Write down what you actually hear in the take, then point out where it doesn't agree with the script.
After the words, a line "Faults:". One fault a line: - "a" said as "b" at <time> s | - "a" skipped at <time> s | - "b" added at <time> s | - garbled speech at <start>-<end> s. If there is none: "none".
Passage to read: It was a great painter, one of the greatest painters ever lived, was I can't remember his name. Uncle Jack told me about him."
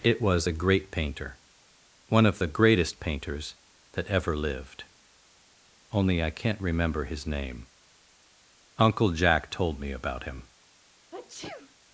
It was a great painter, one of the greatest painters that ever lived, only I can't remember his name. Uncle Jack told me about him."
Faults:
- "that" added at 3.9 s
- "was" said as "only" at 5.9 s